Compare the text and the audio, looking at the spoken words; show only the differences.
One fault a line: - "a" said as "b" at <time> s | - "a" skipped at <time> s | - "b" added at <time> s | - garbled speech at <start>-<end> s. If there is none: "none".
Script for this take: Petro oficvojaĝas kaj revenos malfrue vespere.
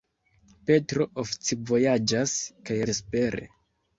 - "revenos malfrue" skipped at 2.8 s